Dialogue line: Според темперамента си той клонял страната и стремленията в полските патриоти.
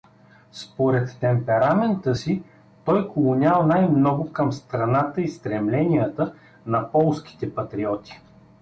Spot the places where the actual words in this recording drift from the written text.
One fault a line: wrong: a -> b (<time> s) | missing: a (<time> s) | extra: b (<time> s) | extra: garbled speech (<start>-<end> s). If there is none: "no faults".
extra: най много към (3.7 s)
wrong: в -> на (6.7 s)